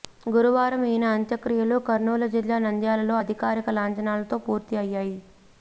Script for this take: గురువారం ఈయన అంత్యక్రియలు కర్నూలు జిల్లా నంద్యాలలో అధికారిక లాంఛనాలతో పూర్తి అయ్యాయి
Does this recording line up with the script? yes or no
yes